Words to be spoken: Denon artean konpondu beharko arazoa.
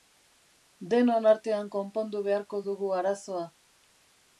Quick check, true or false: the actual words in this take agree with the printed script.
false